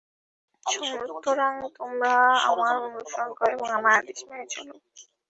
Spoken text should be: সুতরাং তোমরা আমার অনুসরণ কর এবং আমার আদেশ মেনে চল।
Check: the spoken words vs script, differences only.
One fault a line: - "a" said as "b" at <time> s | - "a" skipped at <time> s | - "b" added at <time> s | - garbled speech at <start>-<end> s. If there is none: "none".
none